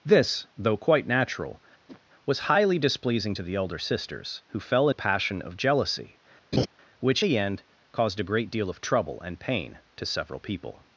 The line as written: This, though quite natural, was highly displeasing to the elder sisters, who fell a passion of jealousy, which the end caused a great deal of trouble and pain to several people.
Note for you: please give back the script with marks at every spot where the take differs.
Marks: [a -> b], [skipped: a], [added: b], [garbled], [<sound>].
This, though quite natural, [whoosh] was highly displeasing to the elder sisters, who fell a passion of jealousy, [laugh] which the end caused a great deal of trouble and pain to several people.